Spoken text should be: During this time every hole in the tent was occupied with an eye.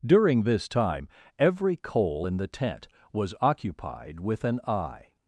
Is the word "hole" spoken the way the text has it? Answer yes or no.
no